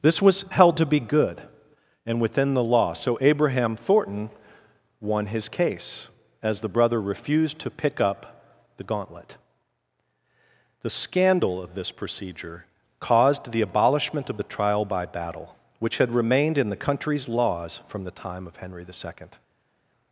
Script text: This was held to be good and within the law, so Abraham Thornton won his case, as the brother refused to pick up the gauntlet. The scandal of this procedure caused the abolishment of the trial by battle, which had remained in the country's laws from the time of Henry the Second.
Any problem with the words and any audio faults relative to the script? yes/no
no